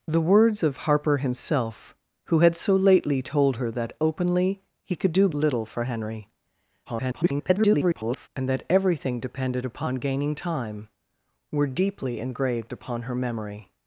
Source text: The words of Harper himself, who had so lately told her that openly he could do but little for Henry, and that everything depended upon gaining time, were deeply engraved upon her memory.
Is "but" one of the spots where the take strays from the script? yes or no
yes